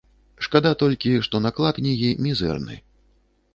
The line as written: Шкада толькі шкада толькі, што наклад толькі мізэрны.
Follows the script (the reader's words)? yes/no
no